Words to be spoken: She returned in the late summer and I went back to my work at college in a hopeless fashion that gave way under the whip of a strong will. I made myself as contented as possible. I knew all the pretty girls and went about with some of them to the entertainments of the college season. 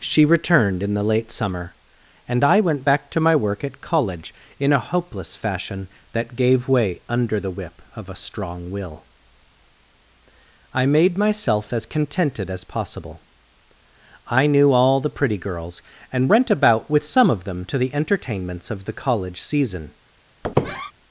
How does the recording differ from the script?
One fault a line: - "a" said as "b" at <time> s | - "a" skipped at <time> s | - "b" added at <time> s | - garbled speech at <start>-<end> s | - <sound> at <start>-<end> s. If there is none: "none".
- squeak at 20.4-20.9 s